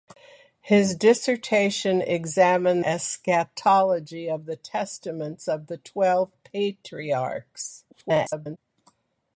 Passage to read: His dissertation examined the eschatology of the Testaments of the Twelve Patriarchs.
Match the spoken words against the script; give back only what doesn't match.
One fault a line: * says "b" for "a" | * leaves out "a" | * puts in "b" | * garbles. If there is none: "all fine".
* leaves out "the"
* garbles